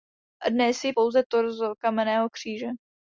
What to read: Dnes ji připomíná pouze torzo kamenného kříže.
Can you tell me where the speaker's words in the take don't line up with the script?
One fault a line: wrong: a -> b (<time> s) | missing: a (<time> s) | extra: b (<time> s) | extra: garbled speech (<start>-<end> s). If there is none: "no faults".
missing: připomíná (0.9 s)